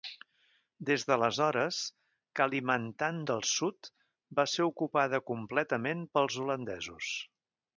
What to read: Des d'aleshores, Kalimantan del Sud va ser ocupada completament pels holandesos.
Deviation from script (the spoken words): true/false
false